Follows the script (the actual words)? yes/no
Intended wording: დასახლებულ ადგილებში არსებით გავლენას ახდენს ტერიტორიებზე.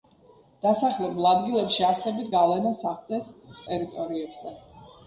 yes